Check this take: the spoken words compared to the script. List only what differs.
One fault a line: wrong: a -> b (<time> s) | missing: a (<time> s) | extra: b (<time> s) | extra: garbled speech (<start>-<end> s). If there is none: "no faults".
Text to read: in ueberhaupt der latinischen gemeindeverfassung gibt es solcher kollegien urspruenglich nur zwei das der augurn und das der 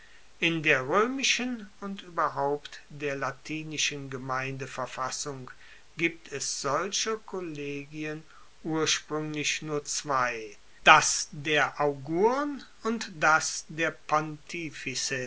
extra: der roemischen und (0.6 s)